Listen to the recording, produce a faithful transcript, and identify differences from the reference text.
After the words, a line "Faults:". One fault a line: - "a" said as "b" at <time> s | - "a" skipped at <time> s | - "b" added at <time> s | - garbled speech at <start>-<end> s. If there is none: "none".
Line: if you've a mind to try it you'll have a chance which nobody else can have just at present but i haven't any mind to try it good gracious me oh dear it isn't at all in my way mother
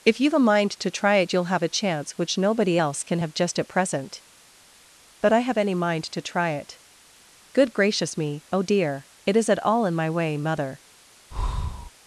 if you've a mind to try it you'll have a chance which nobody else can have just at present but i have any mind to try it good gracious me oh dear it is at all in my way mother
Faults:
- "haven't" said as "have" at 5.4 s
- "isn't" said as "is" at 9.4 s